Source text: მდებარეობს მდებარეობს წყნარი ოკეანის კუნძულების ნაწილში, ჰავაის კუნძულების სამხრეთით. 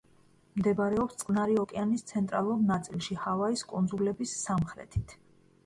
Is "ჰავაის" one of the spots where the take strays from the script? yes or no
no